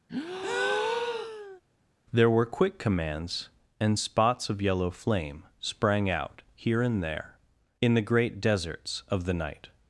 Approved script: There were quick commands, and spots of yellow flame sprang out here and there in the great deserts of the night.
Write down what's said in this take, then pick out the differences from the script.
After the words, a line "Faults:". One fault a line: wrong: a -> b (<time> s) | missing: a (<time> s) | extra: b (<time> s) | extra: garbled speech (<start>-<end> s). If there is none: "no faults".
There were quick commands, and spots of yellow flame sprang out here and there in the great deserts of the night.
Faults:
no faults